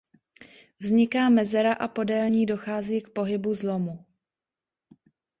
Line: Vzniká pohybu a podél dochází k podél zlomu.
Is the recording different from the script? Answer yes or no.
yes